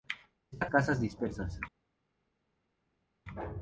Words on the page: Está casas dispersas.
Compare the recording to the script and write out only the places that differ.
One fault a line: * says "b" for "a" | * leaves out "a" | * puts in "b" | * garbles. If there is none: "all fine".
all fine